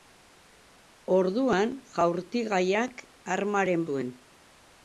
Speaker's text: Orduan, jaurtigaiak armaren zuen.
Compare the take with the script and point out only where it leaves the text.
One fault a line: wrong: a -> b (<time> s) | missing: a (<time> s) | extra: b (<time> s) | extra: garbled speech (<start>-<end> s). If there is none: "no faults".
no faults